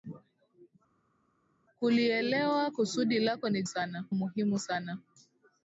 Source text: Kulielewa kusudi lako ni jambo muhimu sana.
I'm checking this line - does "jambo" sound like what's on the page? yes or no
no